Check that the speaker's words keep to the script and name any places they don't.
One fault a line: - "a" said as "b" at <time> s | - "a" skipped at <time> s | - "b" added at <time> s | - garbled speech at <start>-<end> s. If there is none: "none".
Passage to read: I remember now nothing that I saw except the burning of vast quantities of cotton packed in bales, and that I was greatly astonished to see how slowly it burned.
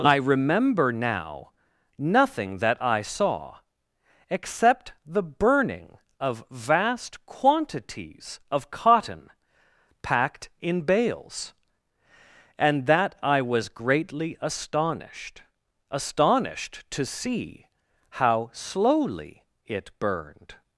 - "astonished" added at 15.9 s